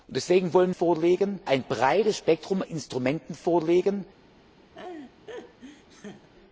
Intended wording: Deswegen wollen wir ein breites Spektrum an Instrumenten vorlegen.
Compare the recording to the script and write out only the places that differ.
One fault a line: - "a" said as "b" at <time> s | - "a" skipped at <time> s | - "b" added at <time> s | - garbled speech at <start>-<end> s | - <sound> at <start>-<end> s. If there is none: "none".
- "wir" said as "vorlegen" at 0.7 s
- "an" skipped at 2.6 s
- laugh at 4.7-6.3 s